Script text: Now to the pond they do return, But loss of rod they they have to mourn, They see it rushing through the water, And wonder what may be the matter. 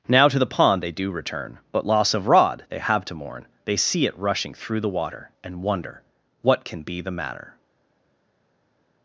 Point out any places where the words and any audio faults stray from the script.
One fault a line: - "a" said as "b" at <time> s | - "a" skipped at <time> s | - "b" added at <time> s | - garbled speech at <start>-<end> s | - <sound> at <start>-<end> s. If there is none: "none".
- "they" skipped at 2.8 s
- "may" said as "can" at 6.6 s